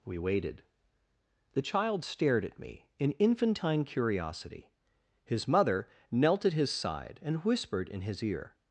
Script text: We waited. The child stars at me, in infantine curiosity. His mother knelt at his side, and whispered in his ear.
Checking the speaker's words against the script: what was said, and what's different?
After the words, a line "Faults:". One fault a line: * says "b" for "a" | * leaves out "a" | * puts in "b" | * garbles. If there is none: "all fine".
We waited. The child stared at me, in infantine curiosity. His mother knelt at his side, and whispered in his ear.
Faults:
* says "stared" for "stars"